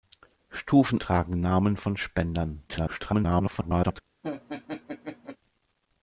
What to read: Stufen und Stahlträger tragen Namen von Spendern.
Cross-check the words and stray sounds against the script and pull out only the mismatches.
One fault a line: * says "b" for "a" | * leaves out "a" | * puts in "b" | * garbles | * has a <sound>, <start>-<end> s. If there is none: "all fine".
* leaves out "und Stahlträger"
* garbles
* has a laugh, 4.2-5.4 s